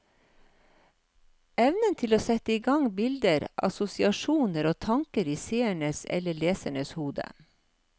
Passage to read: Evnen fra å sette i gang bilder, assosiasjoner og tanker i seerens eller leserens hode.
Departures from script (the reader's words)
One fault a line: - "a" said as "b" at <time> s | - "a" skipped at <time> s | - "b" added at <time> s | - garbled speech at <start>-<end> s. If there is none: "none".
- "fra" said as "til" at 2.0 s